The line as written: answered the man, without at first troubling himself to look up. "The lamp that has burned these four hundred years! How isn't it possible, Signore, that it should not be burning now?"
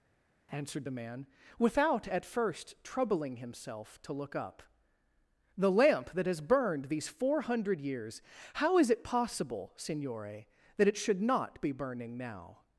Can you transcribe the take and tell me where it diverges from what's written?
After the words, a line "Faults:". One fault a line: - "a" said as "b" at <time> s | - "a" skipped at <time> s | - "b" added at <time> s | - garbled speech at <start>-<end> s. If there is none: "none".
answered the man, without at first troubling himself to look up. "The lamp that has burned these four hundred years! How is it possible, Signore, that it should not be burning now?"
Faults:
- "isn't" said as "is" at 8.8 s